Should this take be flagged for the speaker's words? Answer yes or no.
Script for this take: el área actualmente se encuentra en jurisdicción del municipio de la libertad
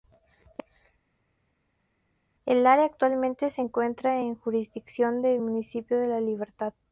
no